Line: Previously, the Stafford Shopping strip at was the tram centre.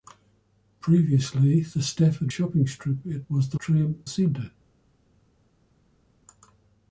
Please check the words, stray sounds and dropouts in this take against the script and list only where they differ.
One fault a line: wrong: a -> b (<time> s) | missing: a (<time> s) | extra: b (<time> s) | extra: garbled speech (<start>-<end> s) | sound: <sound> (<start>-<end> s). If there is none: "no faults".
no faults